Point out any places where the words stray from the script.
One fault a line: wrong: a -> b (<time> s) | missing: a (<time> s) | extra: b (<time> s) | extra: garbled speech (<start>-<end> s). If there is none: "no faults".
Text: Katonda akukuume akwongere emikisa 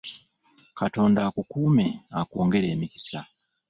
no faults